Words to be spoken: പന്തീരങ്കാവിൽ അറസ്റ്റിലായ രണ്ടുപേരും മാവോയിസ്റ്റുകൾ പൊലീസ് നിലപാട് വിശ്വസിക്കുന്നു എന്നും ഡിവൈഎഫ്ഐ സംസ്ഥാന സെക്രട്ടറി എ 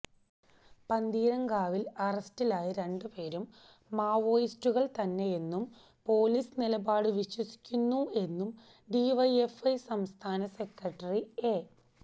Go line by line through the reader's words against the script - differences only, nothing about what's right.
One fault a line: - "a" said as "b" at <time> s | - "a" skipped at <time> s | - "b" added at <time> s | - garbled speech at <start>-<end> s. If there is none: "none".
- "തന്നെയെന്നും" added at 5.0 s